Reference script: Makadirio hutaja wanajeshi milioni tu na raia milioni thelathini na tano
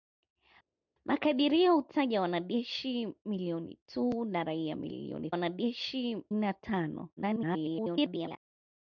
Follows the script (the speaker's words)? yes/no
no